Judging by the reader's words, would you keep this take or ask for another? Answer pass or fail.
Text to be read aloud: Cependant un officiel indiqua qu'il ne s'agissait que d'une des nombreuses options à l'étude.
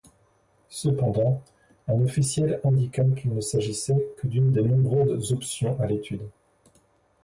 pass